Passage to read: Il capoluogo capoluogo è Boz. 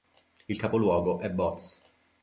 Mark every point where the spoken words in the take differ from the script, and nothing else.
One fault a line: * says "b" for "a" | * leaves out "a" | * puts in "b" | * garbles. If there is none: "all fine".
* leaves out "capoluogo"